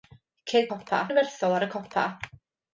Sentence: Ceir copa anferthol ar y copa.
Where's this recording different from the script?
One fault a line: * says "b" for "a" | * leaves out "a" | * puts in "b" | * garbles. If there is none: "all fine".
all fine